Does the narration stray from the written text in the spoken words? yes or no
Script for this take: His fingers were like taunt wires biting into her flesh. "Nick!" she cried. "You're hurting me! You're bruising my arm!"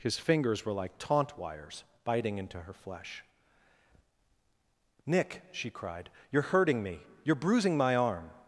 no